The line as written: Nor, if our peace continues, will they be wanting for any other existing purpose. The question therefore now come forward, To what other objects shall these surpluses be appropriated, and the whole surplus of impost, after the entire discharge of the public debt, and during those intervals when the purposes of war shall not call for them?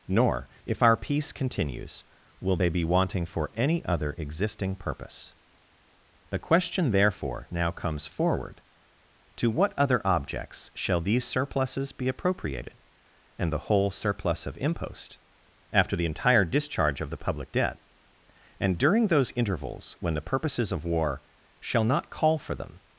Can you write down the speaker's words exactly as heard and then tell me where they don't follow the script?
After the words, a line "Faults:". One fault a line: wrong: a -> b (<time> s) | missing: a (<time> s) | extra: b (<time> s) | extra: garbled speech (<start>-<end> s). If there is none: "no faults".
Nor, if our peace continues, will they be wanting for any other existing purpose. The question therefore now comes forward, To what other objects shall these surpluses be appropriated, and the whole surplus of impost, after the entire discharge of the public debt, and during those intervals when the purposes of war shall not call for them?
Faults:
wrong: come -> comes (7.7 s)